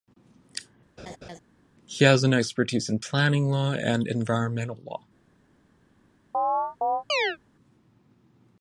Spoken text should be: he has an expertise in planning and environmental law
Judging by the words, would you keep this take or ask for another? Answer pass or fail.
fail